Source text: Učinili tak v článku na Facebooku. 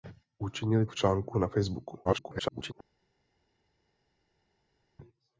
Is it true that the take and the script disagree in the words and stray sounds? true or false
true